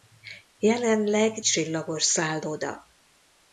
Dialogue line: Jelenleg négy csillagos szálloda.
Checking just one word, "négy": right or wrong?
wrong